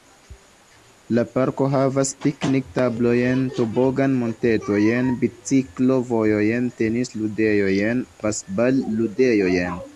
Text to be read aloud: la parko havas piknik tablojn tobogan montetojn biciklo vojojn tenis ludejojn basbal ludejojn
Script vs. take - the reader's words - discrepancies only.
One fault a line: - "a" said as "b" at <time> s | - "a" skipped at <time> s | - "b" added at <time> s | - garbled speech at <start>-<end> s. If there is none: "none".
none